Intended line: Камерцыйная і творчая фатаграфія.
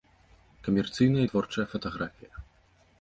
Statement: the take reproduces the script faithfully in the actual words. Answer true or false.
true